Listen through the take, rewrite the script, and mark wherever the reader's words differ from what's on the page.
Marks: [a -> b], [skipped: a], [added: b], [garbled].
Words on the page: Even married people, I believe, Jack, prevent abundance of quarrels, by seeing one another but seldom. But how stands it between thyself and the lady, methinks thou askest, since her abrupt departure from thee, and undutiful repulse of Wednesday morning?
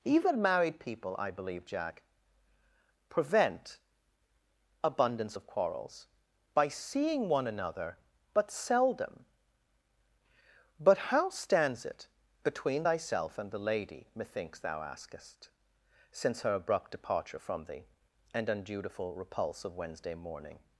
Even married people, I believe, Jack, prevent abundance of quarrels, by seeing one another but seldom. But how stands it between thyself and the lady, methinks thou askest, since her abrupt departure from thee, and undutiful repulse of Wednesday morning?